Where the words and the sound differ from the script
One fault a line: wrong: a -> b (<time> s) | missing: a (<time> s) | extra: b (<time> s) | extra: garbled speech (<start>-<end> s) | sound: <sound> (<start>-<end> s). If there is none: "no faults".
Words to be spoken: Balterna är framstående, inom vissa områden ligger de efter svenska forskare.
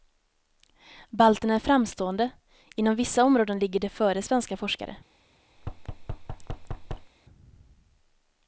wrong: efter -> före (3.9 s)
sound: thud (5.6-7.1 s)